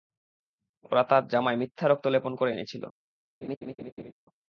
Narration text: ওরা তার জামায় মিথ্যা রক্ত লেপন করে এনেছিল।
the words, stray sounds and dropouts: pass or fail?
fail